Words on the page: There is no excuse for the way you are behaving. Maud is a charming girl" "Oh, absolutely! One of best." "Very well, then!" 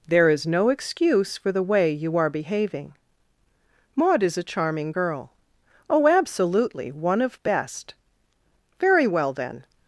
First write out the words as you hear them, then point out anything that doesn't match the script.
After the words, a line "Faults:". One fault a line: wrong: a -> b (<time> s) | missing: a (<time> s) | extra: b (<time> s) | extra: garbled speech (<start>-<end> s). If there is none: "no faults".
There is no excuse for the way you are behaving. Maud is a charming girl" "Oh, absolutely! One of best." "Very well, then!"
Faults:
no faults